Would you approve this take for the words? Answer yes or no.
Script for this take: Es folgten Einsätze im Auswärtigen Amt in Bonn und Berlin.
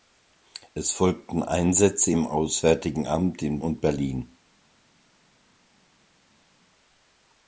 no